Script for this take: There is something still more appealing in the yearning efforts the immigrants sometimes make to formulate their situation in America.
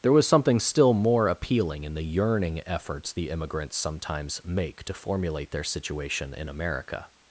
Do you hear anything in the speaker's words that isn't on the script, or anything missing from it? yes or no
yes